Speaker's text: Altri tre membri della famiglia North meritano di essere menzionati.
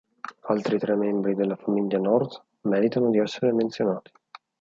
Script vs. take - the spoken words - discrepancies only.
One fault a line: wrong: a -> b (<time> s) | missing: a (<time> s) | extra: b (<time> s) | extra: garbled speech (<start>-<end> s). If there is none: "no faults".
no faults